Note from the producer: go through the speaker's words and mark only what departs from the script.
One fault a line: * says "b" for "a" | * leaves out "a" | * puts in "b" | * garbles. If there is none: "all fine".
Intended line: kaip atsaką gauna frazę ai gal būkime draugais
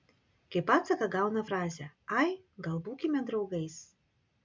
all fine